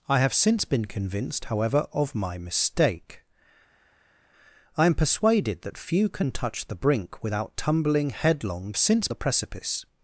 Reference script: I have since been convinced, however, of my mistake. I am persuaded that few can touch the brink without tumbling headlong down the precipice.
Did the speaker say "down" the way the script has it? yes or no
no